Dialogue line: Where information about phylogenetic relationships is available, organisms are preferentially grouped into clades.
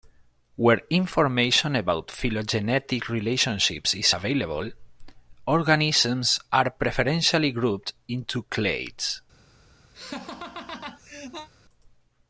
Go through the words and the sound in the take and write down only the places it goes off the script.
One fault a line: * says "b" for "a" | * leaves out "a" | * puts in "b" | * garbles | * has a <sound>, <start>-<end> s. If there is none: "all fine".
* has a laugh, 9.9-11.5 s